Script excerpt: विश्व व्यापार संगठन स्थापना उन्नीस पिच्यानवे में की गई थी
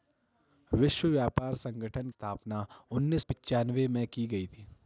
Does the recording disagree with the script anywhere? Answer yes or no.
no